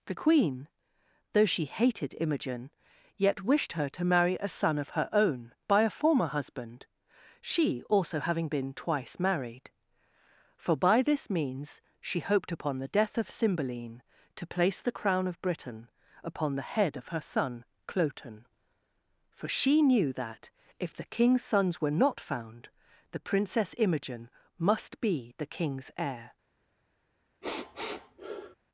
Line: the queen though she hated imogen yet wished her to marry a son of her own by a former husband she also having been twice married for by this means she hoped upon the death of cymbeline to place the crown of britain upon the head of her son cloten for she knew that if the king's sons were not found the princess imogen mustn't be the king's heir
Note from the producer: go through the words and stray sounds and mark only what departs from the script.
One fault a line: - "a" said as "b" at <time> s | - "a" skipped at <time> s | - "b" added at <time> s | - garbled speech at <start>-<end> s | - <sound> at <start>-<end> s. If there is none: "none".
- "mustn't" said as "must" at 24.6 s
- sniff at 27.4-28.6 s